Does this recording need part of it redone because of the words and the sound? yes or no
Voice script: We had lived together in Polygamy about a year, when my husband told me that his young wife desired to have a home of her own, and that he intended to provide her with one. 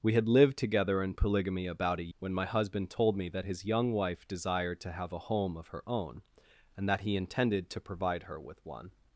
yes